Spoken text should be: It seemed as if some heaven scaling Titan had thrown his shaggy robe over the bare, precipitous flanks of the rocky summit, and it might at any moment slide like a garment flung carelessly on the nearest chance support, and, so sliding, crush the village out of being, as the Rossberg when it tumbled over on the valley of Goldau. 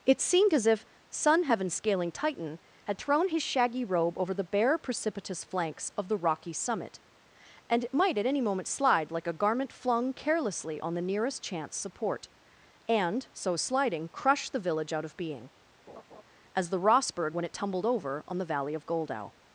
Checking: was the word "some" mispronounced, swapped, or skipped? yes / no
yes